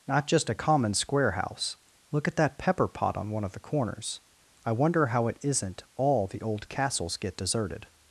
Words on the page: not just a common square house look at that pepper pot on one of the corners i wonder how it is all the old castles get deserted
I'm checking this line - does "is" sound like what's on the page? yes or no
no